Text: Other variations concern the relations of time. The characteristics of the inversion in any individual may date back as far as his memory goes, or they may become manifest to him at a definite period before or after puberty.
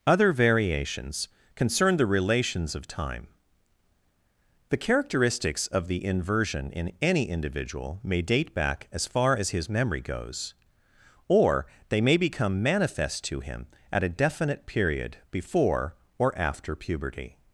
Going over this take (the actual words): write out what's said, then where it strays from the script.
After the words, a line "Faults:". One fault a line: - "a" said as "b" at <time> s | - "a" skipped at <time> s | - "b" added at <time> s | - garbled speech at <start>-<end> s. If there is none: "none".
Other variations concern the relations of time. The characteristics of the inversion in any individual may date back as far as his memory goes, or they may become manifest to him at a definite period before or after puberty.
Faults:
none